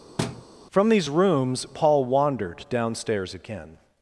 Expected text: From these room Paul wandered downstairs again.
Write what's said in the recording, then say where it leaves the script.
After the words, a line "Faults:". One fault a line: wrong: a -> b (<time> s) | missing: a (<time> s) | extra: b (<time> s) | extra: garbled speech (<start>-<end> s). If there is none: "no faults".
From these rooms Paul wandered downstairs again.
Faults:
wrong: room -> rooms (1.1 s)